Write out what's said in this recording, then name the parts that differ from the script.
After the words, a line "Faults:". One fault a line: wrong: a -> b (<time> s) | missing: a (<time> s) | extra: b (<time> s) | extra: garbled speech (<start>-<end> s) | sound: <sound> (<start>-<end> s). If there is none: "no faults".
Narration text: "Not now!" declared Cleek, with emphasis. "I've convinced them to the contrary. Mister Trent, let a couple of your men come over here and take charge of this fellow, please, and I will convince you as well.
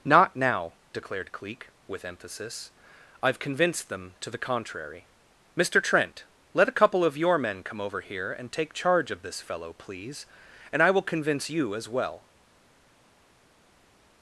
"Not now!" declared Cleek, with emphasis. "I've convinced them to the contrary. Mister Trent, let a couple of your men come over here and take charge of this fellow, please, and I will convince you as well.
Faults:
no faults